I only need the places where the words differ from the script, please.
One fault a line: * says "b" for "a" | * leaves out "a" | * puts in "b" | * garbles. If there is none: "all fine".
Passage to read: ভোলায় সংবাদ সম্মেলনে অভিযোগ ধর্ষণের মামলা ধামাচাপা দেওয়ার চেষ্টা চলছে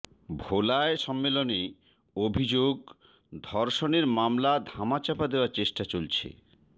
* leaves out "সংবাদ"